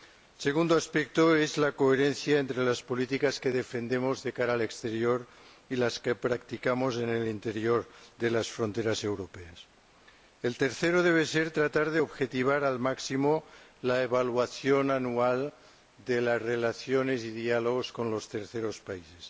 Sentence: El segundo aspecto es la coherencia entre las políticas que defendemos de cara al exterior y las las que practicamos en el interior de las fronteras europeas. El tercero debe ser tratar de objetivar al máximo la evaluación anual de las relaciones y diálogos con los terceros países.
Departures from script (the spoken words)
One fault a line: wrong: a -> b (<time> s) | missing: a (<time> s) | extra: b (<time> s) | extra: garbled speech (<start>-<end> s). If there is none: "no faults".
missing: las (6.0 s)